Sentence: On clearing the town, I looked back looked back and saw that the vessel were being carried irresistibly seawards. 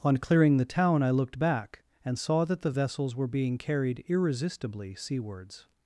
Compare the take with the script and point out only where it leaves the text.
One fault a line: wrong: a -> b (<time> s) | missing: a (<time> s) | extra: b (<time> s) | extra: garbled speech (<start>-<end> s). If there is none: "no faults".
missing: looked back (1.8 s)
wrong: vessel -> vessels (2.7 s)